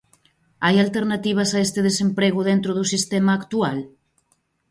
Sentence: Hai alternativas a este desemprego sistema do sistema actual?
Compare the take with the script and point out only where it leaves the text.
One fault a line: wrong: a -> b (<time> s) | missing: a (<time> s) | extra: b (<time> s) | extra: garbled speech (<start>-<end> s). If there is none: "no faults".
wrong: sistema -> dentro (2.5 s)